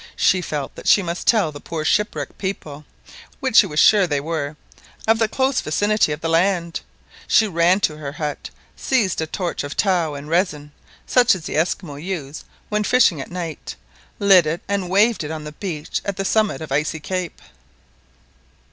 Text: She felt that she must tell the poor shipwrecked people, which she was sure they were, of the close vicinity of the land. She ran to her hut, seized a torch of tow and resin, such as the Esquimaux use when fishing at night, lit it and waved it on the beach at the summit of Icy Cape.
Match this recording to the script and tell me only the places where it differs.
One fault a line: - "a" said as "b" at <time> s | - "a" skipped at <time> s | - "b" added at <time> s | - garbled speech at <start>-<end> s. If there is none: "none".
none